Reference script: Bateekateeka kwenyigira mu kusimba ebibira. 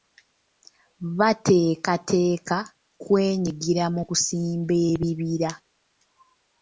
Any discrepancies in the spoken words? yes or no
no